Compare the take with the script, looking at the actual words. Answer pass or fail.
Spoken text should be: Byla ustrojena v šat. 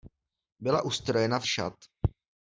pass